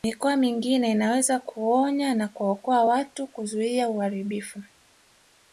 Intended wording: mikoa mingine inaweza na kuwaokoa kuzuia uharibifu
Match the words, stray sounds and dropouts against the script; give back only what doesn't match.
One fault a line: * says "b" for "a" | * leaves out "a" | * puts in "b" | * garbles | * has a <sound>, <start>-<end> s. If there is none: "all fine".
* puts in "kuonya"
* puts in "watu"